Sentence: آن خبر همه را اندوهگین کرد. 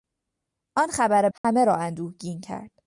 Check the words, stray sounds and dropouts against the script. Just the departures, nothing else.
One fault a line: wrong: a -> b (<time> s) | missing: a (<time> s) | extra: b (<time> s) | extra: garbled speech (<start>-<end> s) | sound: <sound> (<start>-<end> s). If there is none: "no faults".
sound: dropout (1.4-1.4 s)